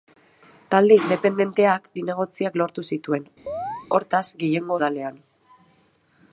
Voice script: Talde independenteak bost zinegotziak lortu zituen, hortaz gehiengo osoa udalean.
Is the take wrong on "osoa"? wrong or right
wrong